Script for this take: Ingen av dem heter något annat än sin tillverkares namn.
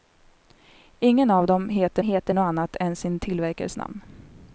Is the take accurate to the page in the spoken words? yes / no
no